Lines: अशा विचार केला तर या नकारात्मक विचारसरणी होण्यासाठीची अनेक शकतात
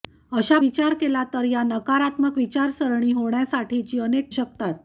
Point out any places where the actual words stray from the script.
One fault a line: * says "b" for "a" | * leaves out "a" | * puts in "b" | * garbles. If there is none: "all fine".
all fine